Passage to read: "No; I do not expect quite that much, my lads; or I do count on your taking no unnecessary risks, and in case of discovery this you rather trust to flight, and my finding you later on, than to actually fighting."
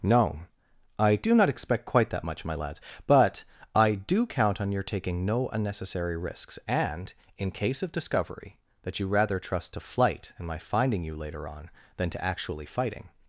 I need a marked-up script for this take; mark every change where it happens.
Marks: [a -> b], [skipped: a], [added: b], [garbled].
"No; I do not expect quite that much, my lads; [or -> but] I do count on your taking no unnecessary risks, and in case of discovery [this -> that] you rather trust to flight, and my finding you later on, than to actually fighting."